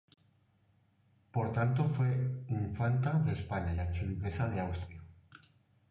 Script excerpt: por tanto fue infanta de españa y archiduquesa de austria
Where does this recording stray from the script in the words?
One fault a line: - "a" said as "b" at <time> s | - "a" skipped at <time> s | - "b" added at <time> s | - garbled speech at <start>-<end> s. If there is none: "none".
none